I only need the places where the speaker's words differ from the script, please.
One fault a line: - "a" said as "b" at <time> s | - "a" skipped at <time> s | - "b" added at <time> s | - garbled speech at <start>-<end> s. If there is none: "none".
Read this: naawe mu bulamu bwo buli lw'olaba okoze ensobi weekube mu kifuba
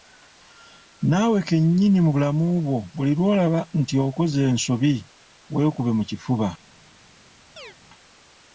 - "kennyini" added at 1.5 s
- "nti" added at 3.8 s